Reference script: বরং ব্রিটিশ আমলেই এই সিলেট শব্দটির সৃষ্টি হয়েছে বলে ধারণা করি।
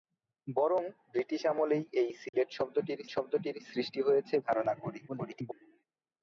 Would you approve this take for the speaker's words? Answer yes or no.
no